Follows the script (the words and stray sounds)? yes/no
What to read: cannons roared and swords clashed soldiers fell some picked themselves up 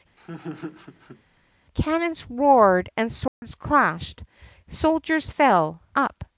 no